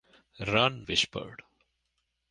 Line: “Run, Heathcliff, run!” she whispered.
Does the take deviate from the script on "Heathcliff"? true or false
true